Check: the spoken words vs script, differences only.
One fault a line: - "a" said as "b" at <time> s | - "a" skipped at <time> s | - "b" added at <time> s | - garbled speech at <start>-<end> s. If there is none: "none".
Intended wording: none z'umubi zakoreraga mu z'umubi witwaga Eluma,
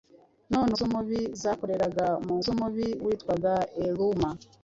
none